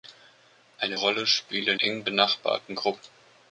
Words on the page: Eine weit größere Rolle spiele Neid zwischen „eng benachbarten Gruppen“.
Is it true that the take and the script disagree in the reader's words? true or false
true